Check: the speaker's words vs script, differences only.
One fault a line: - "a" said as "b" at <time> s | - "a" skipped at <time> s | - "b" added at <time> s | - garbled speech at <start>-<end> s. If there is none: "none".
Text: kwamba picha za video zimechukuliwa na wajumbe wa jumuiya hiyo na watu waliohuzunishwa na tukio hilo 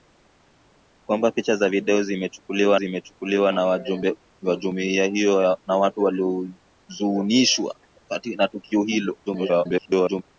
- "zimechukuliwa" added at 2.7 s
- garbled speech at 9.3-10.2 s